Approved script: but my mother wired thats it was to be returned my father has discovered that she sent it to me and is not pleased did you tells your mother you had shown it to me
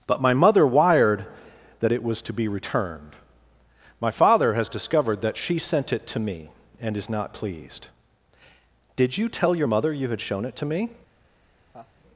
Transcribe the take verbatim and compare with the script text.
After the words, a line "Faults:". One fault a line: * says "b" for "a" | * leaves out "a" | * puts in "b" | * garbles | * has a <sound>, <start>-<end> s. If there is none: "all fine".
but my mother wired that it was to be returned my father has discovered that she sent it to me and is not pleased did you tell your mother you had shown it to me
Faults:
* says "that" for "thats"
* says "tell" for "tells"
* has a laugh, 11.7-11.9 s